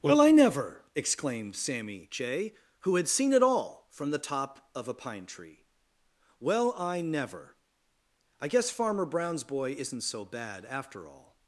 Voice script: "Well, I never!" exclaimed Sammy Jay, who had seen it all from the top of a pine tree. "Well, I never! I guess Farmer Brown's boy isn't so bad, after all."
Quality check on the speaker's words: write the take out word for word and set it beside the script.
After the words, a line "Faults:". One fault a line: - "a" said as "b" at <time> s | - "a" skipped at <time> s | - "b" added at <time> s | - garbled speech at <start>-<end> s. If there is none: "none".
"Well, I never!" exclaimed Sammy Jay, who had seen it all from the top of a pine tree. "Well, I never! I guess Farmer Brown's boy isn't so bad, after all."
Faults:
none